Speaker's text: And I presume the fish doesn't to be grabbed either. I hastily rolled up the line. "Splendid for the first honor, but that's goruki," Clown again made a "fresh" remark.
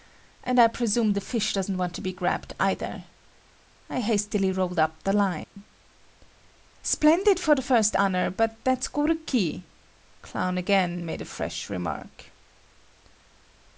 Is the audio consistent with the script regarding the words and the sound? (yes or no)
no